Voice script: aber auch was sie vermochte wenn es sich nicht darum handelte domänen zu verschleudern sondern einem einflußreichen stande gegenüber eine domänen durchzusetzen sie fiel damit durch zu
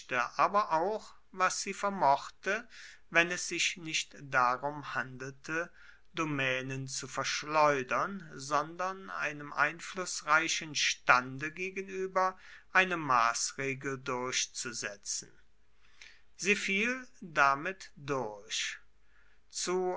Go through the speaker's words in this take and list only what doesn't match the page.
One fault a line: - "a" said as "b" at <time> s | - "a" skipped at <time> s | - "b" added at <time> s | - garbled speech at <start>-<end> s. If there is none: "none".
- "domänen" said as "maßregel" at 13.0 s